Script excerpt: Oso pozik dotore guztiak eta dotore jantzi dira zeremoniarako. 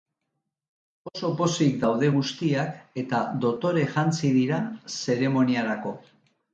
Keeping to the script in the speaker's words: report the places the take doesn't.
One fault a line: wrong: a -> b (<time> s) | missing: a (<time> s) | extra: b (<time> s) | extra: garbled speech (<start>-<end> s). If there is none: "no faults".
wrong: dotore -> daude (1.8 s)